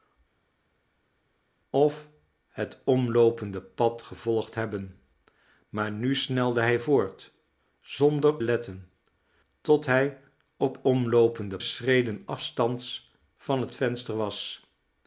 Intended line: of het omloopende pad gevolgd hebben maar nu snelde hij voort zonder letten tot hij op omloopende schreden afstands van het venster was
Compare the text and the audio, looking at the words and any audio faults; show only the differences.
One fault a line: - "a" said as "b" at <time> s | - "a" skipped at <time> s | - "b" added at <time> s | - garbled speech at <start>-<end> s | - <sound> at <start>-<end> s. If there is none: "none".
none